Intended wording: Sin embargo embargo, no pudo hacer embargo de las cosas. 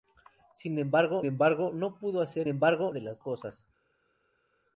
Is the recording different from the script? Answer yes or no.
no